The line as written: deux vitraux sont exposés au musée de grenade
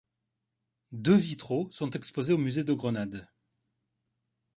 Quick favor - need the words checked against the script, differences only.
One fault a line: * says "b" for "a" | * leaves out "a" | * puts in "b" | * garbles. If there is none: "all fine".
all fine